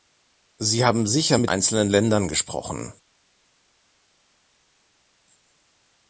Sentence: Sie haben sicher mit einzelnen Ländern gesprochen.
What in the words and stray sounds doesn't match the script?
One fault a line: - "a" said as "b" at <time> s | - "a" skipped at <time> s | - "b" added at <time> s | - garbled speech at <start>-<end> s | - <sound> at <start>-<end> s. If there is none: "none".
none